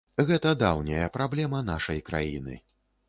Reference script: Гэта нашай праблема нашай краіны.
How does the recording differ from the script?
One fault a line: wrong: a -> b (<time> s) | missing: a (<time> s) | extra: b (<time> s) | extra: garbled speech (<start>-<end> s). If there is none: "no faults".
wrong: нашай -> даўняя (0.6 s)